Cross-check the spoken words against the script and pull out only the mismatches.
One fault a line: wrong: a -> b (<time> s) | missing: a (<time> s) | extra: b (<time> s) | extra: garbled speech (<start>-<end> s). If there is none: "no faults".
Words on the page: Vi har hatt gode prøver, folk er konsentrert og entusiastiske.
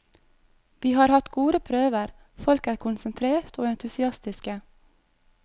no faults